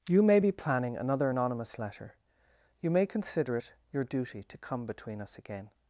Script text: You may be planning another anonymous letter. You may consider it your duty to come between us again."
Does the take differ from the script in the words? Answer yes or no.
no